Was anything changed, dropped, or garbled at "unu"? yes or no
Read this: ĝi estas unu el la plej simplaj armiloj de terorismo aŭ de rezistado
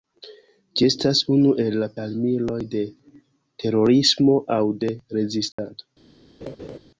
no